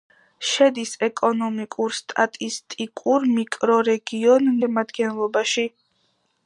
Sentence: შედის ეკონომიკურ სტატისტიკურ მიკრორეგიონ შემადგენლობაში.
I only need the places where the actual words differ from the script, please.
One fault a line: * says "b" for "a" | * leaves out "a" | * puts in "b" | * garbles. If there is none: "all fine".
all fine